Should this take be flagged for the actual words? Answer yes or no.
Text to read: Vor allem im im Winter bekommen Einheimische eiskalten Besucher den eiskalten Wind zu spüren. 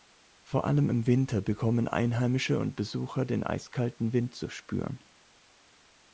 yes